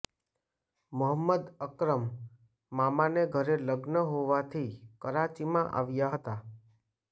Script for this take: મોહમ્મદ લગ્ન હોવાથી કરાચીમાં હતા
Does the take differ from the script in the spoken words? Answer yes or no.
yes